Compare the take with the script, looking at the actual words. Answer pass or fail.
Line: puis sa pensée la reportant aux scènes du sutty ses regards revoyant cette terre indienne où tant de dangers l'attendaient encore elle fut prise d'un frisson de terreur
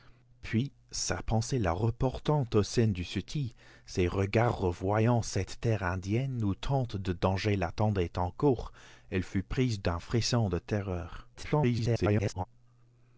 fail